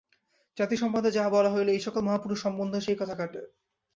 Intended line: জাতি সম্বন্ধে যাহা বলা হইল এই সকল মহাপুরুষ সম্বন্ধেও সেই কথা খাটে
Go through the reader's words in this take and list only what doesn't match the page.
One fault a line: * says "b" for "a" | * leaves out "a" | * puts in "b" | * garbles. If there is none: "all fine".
all fine